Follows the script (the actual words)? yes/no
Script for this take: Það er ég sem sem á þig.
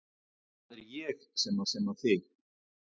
yes